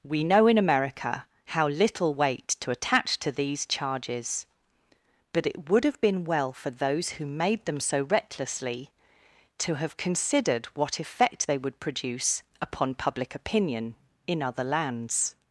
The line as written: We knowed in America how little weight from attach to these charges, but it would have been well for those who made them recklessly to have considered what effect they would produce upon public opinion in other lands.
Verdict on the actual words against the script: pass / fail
fail